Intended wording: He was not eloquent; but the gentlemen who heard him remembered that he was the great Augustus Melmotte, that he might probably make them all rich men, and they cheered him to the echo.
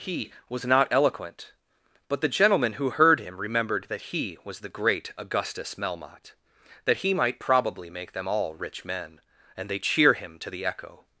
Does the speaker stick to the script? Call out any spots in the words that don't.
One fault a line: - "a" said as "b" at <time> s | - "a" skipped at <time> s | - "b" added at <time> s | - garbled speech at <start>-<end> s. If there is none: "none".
- "cheered" said as "cheer" at 9.8 s